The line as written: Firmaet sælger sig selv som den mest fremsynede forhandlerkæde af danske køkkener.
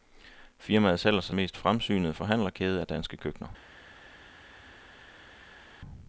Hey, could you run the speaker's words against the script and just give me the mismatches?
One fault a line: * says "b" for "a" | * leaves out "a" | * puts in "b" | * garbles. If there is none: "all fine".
* leaves out "selv som den"